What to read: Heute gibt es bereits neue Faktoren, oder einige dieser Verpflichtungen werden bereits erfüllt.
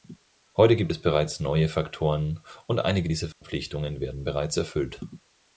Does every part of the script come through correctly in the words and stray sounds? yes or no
no